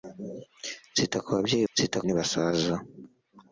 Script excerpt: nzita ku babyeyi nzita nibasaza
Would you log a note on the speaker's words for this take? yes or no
no